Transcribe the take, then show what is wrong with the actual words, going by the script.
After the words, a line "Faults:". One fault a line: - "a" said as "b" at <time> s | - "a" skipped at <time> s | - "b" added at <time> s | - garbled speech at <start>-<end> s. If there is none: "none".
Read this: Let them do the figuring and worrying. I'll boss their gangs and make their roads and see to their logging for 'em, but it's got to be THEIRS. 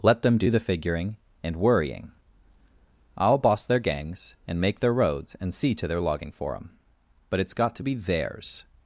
Let them do the figuring and worrying. I'll boss their gangs and make their roads and see to their logging for 'em, but it's got to be THEIRS.
Faults:
none